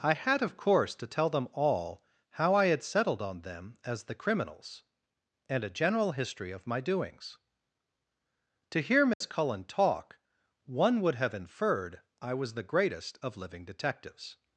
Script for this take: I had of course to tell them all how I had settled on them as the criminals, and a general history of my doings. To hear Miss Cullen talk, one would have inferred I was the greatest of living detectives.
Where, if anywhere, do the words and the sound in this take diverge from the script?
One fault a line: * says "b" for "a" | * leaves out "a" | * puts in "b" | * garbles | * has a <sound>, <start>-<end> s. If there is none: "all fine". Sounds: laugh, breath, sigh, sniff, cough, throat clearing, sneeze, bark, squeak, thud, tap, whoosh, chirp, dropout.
* has a dropout, 9.1-9.2 s